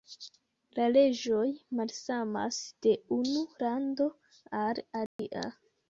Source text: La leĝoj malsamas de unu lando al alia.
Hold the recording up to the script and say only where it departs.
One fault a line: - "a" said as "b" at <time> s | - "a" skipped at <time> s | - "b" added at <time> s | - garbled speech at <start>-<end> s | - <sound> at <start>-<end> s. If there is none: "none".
- dropout at 5.1-5.2 s